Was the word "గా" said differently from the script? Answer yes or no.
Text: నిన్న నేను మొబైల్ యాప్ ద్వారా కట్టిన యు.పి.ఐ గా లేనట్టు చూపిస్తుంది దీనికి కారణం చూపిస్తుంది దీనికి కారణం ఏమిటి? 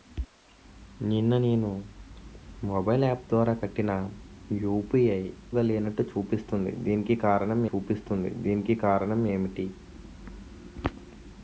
no